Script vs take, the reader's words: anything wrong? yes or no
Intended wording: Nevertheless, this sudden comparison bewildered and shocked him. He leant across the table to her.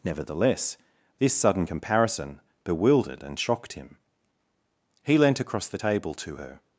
no